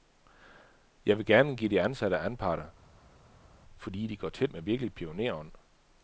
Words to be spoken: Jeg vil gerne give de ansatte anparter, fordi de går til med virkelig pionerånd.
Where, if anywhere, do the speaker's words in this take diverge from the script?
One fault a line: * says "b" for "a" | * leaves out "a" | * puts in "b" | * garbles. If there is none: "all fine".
all fine